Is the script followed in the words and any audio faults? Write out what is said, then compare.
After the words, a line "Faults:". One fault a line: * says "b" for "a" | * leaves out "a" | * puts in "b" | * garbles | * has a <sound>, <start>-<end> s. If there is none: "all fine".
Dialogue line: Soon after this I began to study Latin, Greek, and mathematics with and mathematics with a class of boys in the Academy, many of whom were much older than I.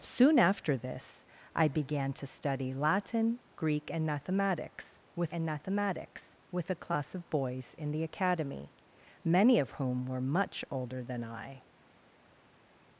Soon after this I began to study Latin, Greek, and mathematics with and mathematics with a class of boys in the Academy, many of whom were much older than I.
Faults:
all fine